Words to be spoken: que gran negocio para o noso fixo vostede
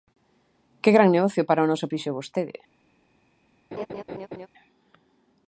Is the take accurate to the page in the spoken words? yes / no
yes